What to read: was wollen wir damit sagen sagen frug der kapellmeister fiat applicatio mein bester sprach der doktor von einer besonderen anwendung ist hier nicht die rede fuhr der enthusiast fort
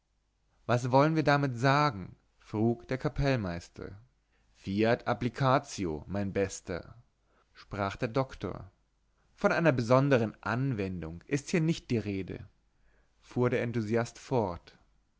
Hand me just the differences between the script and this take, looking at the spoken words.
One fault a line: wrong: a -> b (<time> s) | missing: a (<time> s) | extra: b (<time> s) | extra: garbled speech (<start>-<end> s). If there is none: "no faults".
missing: sagen (2.1 s)